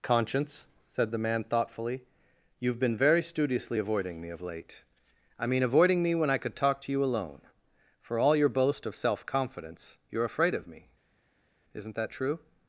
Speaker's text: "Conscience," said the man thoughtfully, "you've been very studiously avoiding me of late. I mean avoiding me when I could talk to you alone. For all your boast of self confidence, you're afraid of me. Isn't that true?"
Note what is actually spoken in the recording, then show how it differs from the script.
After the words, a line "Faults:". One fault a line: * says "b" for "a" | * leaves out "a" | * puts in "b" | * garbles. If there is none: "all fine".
"Conscience," said the man thoughtfully, "you've been very studiously avoiding me of late. I mean avoiding me when I could talk to you alone. For all your boast of self confidence, you're afraid of me. Isn't that true?"
Faults:
all fine